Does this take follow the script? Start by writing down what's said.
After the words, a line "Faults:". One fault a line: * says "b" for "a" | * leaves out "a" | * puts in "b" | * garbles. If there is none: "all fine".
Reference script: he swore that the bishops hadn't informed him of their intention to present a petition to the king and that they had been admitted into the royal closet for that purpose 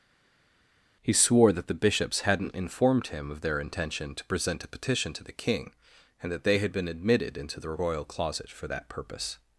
he swore that the bishops hadn't informed him of their intention to present a petition to the king and that they had been admitted into the royal closet for that purpose
Faults:
all fine